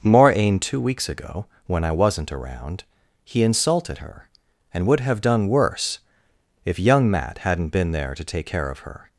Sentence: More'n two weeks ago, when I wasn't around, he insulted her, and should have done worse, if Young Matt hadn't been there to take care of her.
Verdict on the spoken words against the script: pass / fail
fail